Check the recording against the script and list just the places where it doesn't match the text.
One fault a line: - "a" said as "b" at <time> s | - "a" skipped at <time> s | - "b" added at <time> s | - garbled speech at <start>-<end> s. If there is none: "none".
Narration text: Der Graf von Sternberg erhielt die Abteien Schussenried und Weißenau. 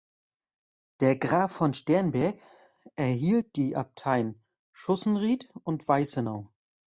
none